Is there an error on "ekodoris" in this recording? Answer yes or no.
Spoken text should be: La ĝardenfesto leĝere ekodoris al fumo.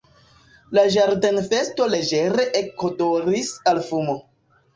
no